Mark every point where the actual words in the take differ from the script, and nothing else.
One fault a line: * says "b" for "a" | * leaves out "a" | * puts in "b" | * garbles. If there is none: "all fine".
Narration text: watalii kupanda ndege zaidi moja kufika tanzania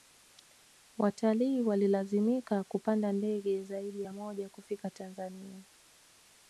* puts in "walilazimika"
* puts in "ya"